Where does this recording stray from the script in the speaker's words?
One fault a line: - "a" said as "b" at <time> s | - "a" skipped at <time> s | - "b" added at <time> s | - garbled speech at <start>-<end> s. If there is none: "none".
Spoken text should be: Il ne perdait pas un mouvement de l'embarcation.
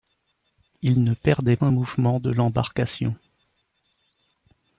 - "pas" skipped at 1.6 s